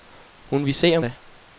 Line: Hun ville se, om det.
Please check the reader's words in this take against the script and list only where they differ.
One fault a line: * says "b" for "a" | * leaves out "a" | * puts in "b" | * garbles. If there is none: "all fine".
all fine